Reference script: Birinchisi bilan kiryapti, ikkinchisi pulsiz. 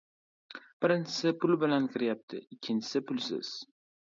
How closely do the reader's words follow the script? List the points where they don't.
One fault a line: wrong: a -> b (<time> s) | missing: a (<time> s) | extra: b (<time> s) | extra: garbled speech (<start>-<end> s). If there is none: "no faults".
extra: pul (1.4 s)